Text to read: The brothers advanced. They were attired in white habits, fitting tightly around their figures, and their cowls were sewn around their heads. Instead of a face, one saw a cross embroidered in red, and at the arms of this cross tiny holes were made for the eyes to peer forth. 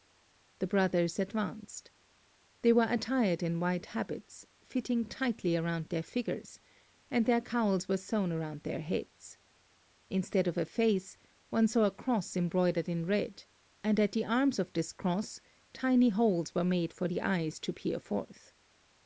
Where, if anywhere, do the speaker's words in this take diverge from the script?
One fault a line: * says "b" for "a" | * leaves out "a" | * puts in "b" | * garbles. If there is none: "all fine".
all fine